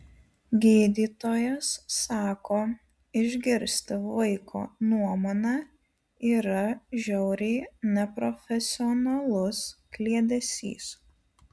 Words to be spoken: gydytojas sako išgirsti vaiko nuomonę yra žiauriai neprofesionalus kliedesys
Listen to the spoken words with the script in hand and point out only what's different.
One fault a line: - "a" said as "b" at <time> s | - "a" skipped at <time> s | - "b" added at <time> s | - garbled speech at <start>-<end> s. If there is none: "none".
none